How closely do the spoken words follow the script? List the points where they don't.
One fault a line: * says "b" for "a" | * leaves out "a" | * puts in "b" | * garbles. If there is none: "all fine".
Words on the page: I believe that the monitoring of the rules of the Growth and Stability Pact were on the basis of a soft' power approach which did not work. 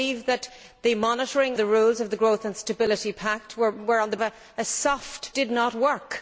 * leaves out "of"
* leaves out "basis of"
* leaves out "power approach which"